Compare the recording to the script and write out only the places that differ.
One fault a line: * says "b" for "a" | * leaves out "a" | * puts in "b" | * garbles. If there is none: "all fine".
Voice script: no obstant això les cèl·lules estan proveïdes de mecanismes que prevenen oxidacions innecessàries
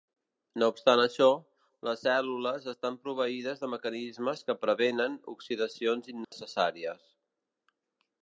all fine